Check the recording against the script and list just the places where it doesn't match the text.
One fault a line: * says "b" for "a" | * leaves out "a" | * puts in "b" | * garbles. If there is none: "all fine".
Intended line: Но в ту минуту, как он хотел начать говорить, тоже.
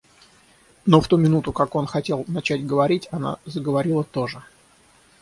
* puts in "она заговорила"